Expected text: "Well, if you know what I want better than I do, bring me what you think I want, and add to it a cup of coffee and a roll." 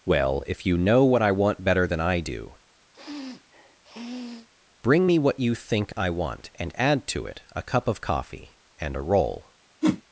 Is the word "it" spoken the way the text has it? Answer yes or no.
yes